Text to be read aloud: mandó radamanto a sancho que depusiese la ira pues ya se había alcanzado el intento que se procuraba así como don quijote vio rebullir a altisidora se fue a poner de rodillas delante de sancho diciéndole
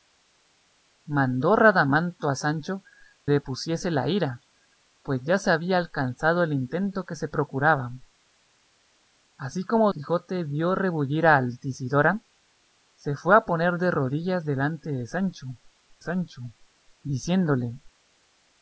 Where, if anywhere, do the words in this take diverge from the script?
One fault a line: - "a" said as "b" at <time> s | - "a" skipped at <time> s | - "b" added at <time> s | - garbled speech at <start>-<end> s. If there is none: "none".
- "que" skipped at 2.8 s
- "don" skipped at 9.9 s
- "sancho" added at 16.0 s